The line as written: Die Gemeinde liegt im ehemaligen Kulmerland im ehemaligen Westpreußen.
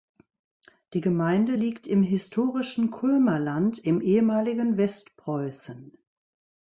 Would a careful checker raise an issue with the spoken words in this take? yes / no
yes